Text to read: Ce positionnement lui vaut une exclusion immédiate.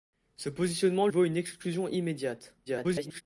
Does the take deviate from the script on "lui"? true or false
true